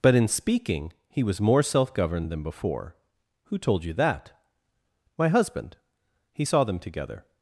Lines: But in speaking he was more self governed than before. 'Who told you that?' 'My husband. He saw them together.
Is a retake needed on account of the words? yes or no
no